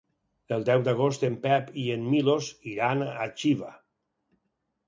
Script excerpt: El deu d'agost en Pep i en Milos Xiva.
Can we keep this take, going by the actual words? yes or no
no